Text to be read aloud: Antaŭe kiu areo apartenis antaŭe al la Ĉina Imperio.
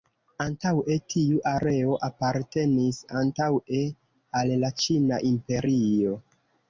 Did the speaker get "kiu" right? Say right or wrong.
wrong